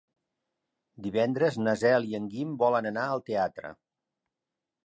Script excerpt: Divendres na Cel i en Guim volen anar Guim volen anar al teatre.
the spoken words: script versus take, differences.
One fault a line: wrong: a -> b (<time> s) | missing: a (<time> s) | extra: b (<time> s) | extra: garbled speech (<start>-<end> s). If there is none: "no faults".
missing: Guim volen anar (3.1 s)